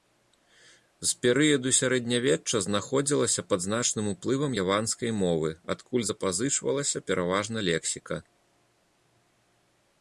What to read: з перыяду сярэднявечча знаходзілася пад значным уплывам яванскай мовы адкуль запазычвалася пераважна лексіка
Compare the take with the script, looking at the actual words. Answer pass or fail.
pass